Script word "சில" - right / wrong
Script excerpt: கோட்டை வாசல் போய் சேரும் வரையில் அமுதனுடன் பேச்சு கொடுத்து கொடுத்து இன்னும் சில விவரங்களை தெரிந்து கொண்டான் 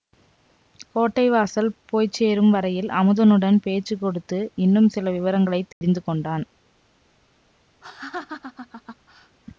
right